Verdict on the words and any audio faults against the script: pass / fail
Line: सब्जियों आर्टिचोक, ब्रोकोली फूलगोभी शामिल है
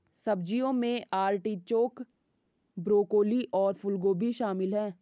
fail